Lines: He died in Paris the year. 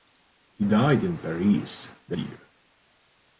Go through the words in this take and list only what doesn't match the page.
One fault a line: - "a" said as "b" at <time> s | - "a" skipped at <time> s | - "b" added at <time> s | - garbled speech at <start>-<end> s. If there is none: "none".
none